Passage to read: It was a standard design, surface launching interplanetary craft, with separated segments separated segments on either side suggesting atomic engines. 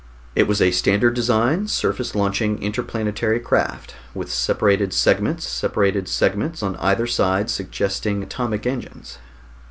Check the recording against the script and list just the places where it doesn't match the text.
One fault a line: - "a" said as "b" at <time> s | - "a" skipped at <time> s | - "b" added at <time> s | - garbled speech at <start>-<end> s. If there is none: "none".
none